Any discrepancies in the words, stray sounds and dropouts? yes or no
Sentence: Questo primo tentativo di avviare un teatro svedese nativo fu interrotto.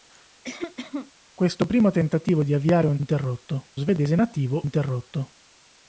yes